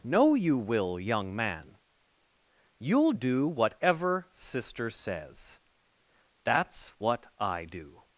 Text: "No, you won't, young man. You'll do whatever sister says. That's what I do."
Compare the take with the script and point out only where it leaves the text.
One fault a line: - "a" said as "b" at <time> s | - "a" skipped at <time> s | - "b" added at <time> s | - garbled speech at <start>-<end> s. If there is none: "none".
- "won't" said as "will" at 0.6 s